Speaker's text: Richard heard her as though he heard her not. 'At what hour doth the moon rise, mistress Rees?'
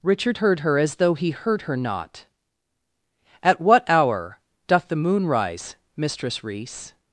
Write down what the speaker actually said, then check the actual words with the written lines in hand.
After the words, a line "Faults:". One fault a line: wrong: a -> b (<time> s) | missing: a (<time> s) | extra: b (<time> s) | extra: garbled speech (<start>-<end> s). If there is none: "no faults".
Richard heard her as though he heard her not. 'At what hour doth the moon rise, mistress Rees?'
Faults:
no faults